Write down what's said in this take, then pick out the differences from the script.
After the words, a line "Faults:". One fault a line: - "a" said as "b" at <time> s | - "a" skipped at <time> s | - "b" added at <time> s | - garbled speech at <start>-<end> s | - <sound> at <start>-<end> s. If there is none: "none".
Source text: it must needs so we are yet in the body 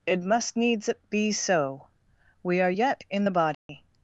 it must needs be so we are yet in the body
Faults:
- "be" added at 1.1 s
- dropout at 3.5-3.7 s